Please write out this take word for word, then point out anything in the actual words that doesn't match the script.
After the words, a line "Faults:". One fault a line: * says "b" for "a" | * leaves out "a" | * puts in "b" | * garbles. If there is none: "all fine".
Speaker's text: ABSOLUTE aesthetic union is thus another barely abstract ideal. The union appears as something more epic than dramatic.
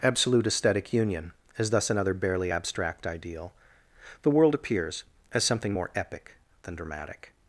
ABSOLUTE aesthetic union is thus another barely abstract ideal. The world appears as something more epic than dramatic.
Faults:
* says "world" for "union"